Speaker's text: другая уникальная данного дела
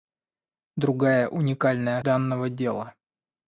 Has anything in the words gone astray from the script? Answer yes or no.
no